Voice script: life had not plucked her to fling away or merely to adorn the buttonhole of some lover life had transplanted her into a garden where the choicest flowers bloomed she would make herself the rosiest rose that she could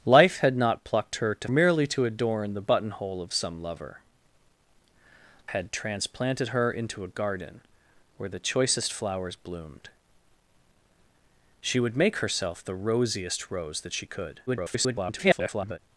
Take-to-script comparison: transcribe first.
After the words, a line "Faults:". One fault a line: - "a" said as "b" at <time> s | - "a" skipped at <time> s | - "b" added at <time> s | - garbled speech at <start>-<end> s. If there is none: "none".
life had not plucked her to merely to adorn the buttonhole of some lover had transplanted her into a garden where the choicest flowers bloomed she would make herself the rosiest rose that she could [garbled]
Faults:
- "fling away or" skipped at 1.5 s
- "life" skipped at 4.0 s
- garbled speech at 14.5-15.8 s